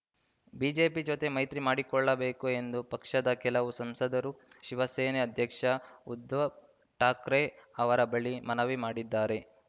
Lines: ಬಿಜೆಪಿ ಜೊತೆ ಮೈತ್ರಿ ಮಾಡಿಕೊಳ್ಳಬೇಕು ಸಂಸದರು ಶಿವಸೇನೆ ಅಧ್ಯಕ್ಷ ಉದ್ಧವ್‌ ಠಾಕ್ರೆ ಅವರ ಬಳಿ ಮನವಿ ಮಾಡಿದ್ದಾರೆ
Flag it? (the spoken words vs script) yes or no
yes